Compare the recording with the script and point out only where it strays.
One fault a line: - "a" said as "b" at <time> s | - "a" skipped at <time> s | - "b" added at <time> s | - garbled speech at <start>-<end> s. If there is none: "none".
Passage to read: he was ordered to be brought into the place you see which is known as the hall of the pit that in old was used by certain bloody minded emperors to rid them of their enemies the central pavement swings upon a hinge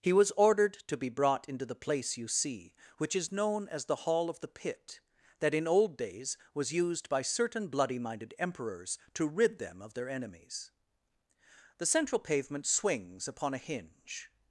- "days" added at 6.0 s